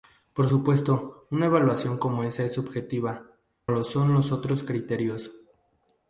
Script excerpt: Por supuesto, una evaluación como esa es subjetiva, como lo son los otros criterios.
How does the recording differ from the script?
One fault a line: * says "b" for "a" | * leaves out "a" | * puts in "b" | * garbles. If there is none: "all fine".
* leaves out "como"